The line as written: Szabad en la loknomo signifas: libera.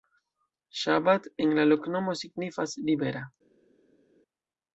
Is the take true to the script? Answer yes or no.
yes